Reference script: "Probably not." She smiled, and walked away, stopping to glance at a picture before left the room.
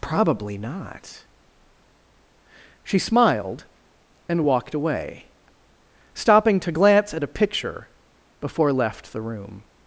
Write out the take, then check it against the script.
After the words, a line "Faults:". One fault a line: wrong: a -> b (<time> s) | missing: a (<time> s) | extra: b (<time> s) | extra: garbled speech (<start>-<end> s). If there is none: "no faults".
"Probably not." She smiled, and walked away, stopping to glance at a picture before left the room.
Faults:
no faults